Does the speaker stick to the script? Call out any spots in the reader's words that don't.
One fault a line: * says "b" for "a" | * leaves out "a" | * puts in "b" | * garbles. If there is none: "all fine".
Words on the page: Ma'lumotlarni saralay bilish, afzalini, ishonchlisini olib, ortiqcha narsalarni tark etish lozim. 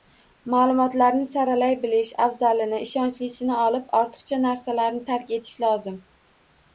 all fine